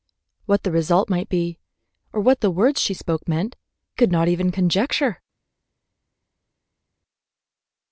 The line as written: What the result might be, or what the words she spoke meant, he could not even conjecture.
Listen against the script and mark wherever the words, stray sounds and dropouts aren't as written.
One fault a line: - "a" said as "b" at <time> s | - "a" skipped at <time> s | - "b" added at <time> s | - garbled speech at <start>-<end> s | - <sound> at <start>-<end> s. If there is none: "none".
- "he" skipped at 3.5 s